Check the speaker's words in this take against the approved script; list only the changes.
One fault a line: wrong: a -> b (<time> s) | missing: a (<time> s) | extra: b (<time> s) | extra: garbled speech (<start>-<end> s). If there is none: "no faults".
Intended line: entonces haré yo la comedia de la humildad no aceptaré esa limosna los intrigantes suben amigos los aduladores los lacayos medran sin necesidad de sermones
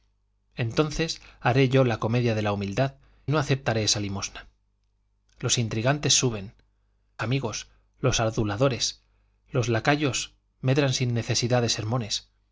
no faults